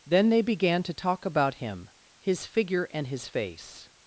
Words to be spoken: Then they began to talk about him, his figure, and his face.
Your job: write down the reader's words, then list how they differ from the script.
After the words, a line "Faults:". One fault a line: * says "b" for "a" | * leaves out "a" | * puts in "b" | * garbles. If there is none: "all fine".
Then they began to talk about him, his figure, and his face.
Faults:
all fine